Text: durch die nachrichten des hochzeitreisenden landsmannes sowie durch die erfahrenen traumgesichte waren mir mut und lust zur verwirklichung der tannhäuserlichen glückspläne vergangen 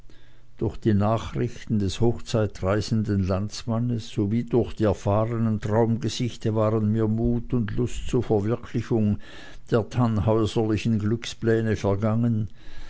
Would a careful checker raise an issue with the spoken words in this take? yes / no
no